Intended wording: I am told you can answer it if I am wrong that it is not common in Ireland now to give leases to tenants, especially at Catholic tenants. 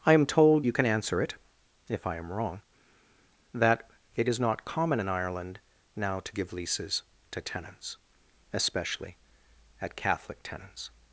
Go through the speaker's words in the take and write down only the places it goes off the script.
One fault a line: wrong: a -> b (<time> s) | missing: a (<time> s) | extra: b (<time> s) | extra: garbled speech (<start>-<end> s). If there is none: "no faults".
no faults